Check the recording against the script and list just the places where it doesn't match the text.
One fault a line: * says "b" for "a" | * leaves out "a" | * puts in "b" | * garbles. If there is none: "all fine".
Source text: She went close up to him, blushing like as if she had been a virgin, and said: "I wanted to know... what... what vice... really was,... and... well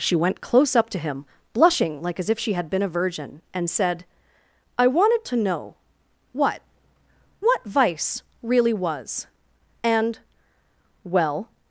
all fine